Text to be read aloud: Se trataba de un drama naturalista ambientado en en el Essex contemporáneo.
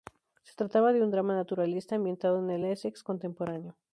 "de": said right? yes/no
yes